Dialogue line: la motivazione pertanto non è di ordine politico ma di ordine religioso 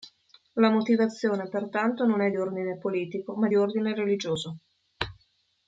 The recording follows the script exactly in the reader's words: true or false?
true